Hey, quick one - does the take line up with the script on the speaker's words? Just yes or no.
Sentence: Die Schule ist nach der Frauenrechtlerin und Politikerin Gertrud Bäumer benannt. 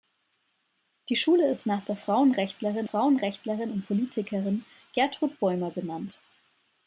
no